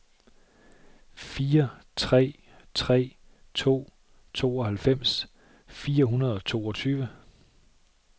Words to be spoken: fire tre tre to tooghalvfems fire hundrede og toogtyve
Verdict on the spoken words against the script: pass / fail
pass